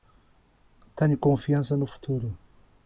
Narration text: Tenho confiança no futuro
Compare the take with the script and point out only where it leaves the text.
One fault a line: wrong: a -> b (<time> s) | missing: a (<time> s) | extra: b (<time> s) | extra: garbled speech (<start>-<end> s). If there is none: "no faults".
no faults